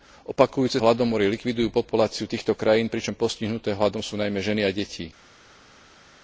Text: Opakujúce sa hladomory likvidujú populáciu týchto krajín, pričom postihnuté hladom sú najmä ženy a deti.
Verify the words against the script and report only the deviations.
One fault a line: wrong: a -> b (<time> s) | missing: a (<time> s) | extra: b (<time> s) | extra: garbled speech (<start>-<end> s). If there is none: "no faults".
missing: sa (0.8 s)